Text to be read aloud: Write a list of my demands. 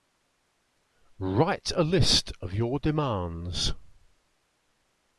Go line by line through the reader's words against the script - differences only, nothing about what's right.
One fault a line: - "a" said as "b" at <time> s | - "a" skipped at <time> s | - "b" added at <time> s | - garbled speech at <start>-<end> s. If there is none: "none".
- "my" said as "your" at 2.5 s